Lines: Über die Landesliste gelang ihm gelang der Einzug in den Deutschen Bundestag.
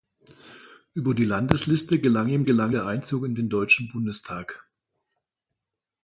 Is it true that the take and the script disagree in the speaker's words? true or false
false